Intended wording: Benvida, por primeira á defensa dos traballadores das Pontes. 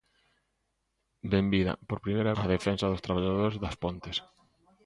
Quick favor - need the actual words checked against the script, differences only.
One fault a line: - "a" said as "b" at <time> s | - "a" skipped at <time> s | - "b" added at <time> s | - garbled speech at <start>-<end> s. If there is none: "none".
none